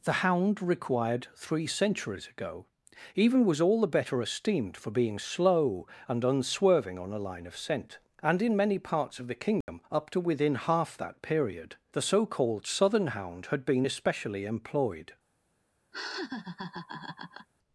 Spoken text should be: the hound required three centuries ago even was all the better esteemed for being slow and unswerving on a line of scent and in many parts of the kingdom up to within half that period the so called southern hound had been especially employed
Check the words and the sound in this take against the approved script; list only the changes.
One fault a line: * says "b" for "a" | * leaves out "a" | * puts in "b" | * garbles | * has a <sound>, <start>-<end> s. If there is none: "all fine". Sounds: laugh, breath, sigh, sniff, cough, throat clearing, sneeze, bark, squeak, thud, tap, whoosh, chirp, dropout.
* has a dropout, 9.6-9.7 s
* has a laugh, 15.9-17.5 s